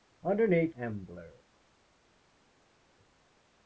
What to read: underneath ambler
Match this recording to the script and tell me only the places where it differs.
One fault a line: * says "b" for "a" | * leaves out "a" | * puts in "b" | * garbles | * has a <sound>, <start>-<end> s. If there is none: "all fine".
all fine